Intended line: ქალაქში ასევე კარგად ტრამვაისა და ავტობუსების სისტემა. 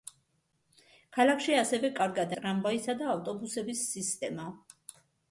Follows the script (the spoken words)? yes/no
yes